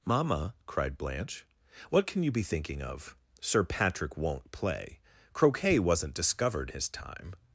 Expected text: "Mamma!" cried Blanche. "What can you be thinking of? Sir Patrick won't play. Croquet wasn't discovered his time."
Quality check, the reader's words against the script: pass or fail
pass